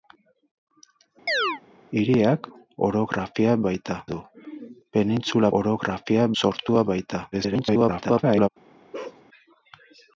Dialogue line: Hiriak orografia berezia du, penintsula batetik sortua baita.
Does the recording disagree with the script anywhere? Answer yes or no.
yes